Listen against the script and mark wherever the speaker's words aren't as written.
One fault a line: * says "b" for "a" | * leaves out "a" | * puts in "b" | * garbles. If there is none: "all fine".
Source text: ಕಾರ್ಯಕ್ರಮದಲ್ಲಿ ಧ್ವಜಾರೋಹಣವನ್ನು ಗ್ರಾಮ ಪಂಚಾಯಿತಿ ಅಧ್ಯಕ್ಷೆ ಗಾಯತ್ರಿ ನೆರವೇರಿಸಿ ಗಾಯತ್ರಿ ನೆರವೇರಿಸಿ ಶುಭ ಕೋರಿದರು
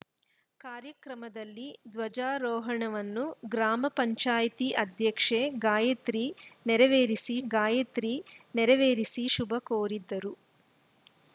all fine